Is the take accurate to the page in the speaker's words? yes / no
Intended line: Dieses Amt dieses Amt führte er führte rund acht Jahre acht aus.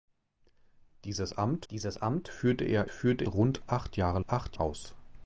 yes